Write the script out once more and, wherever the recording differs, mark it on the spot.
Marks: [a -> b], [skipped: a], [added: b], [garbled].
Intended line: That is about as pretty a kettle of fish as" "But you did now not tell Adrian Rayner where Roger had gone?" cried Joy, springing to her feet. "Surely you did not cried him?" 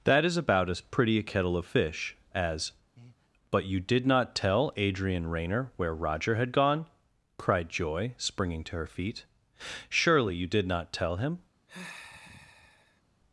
That is about as pretty a kettle of fish as" "But you did [skipped: now] not tell Adrian Rayner where Roger had gone?" cried Joy, springing to her feet. "Surely you did not [cried -> tell] him?"